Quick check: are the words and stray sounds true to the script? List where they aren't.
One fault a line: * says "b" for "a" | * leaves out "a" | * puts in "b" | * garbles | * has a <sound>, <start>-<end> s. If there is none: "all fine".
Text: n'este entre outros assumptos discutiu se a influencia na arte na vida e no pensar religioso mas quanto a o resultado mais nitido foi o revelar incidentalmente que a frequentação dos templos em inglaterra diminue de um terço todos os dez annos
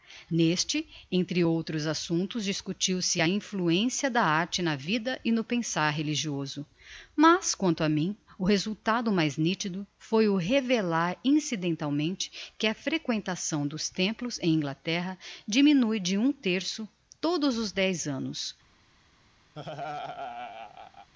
* says "da" for "na"
* puts in "mim"
* has a laugh, 19.5-21.1 s